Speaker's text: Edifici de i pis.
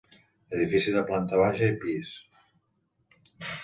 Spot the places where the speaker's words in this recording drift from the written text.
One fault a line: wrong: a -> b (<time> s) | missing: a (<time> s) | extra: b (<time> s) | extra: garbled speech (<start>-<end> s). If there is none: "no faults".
extra: planta baixa (1.1 s)